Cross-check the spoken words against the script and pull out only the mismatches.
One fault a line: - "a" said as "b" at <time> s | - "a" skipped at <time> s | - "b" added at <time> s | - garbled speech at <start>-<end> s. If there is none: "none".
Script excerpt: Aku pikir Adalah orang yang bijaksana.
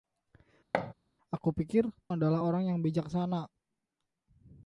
none